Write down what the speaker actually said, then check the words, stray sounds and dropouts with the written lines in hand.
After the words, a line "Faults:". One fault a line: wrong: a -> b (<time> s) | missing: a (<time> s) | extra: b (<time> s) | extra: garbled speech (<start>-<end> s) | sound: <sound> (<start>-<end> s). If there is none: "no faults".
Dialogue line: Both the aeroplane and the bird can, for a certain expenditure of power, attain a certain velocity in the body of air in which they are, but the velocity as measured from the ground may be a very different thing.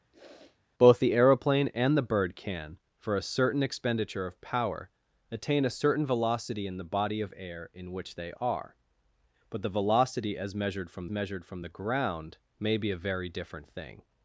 Both the aeroplane and the bird can, for a certain expenditure of power, attain a certain velocity in the body of air in which they are, but the velocity as measured from measured from the ground may be a very different thing.
Faults:
sound: sniff (0.1-0.6 s)
extra: measured from (11.1 s)